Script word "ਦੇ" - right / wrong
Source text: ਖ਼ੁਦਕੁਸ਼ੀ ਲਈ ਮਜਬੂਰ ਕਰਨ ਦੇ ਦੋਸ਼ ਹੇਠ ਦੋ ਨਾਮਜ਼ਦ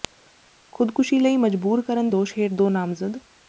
wrong